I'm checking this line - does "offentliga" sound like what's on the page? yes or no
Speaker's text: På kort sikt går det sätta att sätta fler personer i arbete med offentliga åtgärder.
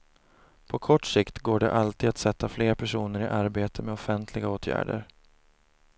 yes